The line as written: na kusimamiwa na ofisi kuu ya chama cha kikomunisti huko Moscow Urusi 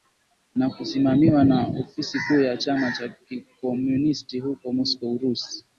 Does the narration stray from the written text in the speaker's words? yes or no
no